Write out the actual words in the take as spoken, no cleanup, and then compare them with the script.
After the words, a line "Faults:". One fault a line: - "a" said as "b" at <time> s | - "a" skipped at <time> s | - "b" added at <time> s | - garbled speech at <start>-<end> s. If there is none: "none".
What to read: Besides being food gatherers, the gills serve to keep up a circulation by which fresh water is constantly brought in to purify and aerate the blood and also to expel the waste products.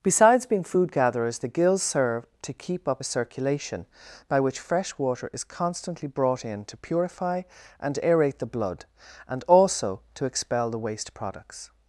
Besides being food gatherers, the gills serve to keep up a circulation by which fresh water is constantly brought in to purify and aerate the blood and also to expel the waste products.
Faults:
none